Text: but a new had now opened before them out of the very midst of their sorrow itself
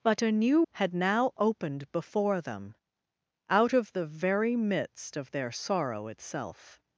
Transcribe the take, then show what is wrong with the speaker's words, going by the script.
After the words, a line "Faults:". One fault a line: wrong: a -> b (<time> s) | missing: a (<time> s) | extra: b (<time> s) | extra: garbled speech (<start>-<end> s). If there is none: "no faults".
but a new had now opened before them out of the very midst of their sorrow itself
Faults:
no faults